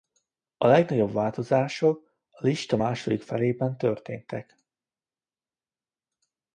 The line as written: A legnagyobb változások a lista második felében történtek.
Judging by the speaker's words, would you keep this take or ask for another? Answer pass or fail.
pass